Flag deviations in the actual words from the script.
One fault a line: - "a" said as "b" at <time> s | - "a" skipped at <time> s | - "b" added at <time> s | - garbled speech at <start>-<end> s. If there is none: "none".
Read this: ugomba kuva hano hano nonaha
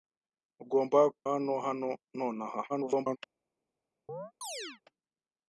- "kuva" skipped at 1.0 s
- garbled speech at 2.7-3.2 s